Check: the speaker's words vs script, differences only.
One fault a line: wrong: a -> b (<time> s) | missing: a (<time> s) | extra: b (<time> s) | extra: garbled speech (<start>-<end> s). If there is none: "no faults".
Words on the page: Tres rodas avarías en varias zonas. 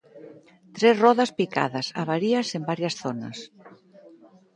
extra: picadas (1.4 s)